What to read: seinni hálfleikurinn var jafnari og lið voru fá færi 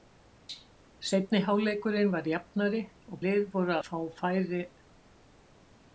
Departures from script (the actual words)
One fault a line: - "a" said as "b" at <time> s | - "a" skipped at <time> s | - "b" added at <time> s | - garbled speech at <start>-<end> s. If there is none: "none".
none